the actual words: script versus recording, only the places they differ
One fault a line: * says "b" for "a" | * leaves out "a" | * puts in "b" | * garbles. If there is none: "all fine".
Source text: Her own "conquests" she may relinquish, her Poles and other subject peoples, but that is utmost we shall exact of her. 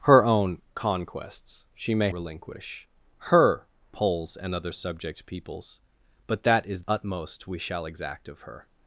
all fine